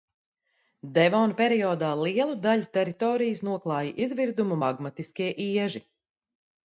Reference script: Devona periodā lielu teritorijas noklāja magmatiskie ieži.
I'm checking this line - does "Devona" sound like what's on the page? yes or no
yes